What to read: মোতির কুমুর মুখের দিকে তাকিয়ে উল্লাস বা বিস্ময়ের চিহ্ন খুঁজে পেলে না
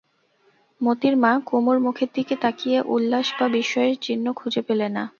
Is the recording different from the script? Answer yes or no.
yes